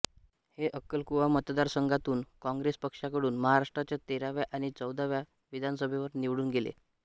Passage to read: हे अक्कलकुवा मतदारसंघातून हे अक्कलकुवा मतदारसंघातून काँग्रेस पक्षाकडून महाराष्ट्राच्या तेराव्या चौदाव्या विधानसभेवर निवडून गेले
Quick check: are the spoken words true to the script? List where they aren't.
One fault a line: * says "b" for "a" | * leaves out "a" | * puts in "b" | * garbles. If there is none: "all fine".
* leaves out "हे अक्कलकुवा मतदारसंघातून"
* puts in "आणि"